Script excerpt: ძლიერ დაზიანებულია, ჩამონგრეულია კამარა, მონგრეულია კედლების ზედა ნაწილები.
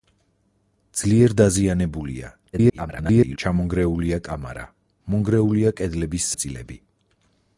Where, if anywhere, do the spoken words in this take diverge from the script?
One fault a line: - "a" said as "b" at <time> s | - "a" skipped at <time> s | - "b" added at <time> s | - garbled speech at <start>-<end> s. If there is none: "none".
- garbled speech at 2.5-3.4 s
- "ზედა" skipped at 6.3 s